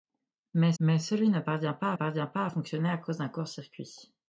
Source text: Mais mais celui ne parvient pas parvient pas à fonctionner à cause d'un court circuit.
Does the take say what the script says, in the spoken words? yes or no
yes